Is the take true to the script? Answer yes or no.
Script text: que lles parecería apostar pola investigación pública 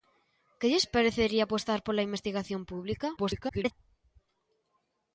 no